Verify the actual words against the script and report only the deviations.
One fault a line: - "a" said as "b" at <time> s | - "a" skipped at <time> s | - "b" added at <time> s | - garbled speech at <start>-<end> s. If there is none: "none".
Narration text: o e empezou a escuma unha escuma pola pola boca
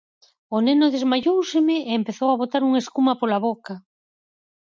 - "neno desmaióuseme" added at 0.7 s
- "escuma" said as "botar" at 2.4 s
- "pola" skipped at 3.4 s